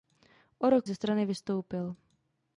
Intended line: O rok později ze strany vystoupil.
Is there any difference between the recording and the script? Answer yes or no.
yes